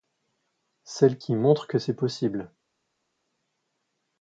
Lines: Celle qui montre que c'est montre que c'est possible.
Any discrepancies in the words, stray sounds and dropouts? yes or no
yes